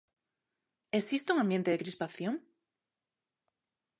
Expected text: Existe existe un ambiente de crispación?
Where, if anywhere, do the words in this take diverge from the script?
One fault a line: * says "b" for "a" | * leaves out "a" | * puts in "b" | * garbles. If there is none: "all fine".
* leaves out "existe"